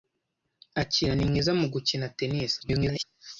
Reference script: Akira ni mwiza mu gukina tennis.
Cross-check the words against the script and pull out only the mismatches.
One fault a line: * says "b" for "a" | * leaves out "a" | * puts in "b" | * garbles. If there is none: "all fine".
* garbles